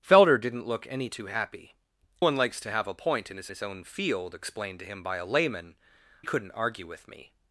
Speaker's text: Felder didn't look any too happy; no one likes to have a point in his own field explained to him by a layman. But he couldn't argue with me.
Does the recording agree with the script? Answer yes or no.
no